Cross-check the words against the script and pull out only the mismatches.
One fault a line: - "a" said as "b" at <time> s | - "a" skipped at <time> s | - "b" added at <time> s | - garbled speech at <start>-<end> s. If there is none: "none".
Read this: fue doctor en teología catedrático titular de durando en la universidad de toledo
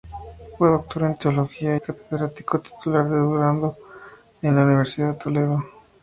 none